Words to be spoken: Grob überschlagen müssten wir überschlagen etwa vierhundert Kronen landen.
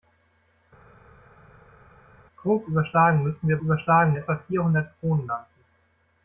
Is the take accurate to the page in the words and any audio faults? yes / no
yes